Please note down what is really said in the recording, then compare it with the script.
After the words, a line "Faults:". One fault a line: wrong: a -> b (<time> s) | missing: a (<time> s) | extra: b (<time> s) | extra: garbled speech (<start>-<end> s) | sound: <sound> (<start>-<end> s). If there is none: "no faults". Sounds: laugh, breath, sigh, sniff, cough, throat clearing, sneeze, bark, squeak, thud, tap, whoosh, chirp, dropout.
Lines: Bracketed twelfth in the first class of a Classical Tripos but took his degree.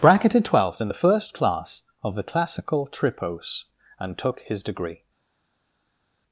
Bracketed twelfth in the first class of the Classical Tripos and took his degree.
Faults:
wrong: a -> the (2.1 s)
wrong: but -> and (4.0 s)